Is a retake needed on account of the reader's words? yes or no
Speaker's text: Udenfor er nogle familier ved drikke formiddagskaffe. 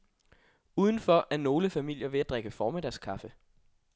yes